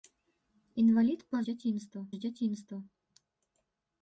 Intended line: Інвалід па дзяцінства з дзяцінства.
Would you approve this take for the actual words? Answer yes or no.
yes